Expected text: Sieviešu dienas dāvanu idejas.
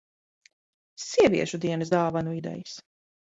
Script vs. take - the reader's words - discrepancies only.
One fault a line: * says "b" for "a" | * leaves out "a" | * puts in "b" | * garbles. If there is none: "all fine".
all fine